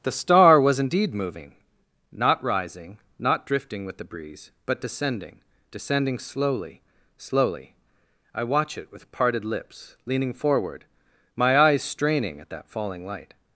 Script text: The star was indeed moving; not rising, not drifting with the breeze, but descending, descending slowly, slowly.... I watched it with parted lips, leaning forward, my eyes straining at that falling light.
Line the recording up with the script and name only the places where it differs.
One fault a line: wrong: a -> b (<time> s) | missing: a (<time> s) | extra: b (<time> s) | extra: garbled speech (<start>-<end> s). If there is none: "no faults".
wrong: watched -> watch (8.4 s)